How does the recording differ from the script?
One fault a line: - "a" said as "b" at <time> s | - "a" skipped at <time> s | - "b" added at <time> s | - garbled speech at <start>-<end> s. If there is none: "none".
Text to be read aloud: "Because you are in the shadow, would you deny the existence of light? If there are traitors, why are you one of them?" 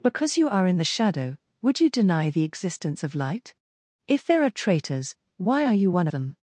- "of" skipped at 6.1 s